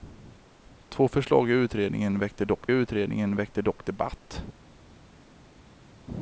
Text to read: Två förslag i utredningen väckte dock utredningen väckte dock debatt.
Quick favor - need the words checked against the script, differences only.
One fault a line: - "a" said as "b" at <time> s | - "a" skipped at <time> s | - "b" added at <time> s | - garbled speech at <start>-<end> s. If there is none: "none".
none